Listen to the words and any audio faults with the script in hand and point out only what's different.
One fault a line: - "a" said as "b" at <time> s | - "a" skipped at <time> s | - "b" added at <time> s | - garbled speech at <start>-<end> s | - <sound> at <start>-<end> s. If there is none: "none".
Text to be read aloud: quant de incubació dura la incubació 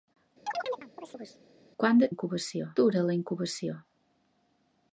- chirp at 0.5-1.4 s